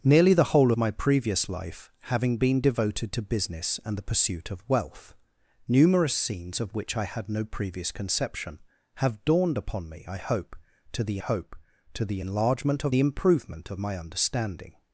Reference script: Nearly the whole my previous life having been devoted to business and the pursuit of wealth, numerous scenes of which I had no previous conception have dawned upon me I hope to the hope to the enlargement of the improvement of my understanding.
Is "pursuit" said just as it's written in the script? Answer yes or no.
yes